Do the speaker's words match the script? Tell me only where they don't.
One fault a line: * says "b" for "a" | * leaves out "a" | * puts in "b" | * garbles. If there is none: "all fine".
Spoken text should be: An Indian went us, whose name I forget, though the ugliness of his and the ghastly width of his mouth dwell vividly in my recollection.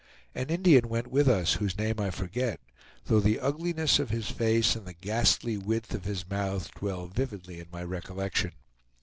* puts in "with"
* puts in "face"